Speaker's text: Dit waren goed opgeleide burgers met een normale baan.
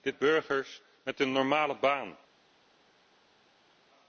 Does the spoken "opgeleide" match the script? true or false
false